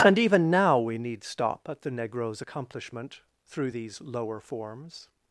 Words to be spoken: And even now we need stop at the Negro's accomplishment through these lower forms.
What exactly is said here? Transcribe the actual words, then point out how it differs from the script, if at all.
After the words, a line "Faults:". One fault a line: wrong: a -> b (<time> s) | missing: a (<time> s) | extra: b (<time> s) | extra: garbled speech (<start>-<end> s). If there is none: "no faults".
And even now we need stop at the Negro's accomplishment through these lower forms.
Faults:
no faults